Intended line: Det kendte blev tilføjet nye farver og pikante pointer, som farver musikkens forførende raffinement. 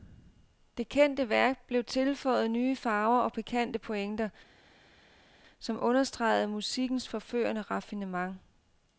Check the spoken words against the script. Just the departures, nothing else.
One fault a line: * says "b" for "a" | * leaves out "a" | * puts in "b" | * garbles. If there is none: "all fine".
* puts in "værk"
* says "understregede" for "farver"